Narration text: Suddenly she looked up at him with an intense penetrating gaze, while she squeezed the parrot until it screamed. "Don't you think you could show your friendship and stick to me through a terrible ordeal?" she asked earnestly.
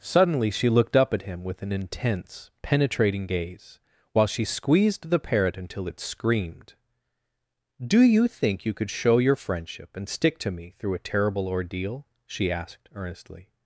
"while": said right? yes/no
yes